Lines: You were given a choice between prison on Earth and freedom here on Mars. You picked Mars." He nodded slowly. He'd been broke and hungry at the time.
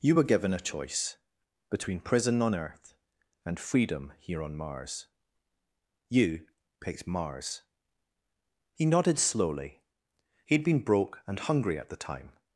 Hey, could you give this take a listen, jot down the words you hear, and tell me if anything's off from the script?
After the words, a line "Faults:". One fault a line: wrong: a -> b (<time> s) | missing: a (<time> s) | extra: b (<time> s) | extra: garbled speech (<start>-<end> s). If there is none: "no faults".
You were given a choice between prison on Earth and freedom here on Mars. You picked Mars." He nodded slowly. He'd been broke and hungry at the time.
Faults:
no faults